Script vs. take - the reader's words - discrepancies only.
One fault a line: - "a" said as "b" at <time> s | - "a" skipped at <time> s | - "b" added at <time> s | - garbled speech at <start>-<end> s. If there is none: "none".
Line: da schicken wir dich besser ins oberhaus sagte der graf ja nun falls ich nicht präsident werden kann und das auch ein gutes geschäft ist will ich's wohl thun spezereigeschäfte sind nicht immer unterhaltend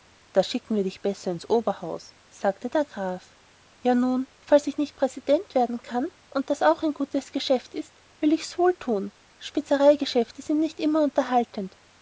none